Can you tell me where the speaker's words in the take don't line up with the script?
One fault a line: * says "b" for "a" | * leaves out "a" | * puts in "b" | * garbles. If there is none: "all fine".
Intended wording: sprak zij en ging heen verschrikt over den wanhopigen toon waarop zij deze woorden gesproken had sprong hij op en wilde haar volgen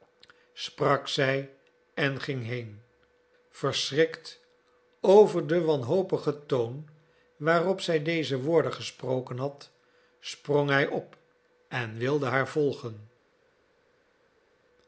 all fine